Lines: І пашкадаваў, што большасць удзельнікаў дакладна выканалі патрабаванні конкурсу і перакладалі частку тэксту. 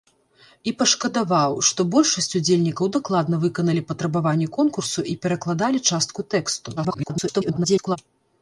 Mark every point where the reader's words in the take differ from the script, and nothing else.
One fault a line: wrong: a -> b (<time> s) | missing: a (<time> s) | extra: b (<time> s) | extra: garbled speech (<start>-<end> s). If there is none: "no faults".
extra: garbled speech (6.8-8.0 s)